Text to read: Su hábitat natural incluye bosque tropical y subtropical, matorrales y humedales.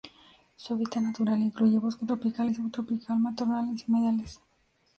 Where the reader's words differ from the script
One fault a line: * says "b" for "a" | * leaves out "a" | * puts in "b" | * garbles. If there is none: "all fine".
all fine